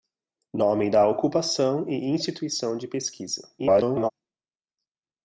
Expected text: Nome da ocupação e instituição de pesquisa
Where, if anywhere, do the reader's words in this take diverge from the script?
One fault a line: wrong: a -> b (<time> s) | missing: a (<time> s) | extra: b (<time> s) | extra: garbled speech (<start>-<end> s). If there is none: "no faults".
extra: garbled speech (3.6-4.1 s)